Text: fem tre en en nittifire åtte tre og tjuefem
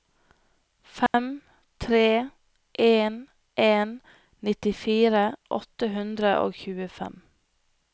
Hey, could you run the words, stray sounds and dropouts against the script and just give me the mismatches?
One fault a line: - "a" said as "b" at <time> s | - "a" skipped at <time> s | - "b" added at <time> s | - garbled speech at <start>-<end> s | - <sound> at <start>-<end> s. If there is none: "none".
- dropout at 1.1-1.1 s
- "tre" said as "hundre" at 6.0 s